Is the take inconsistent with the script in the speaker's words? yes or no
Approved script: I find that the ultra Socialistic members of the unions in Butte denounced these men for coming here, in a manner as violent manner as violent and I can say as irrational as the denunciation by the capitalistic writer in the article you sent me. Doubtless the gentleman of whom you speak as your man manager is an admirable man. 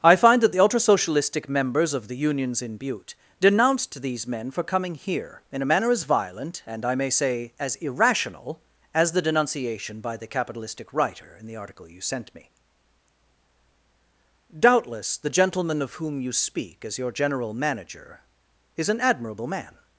yes